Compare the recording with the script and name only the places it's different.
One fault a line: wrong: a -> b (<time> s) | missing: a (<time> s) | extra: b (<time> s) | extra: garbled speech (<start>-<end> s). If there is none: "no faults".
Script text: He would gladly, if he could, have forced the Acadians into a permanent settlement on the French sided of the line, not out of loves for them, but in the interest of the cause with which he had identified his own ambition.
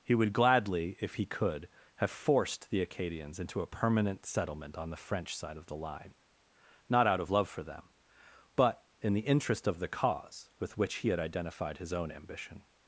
wrong: sided -> side (5.3 s)
wrong: loves -> love (7.3 s)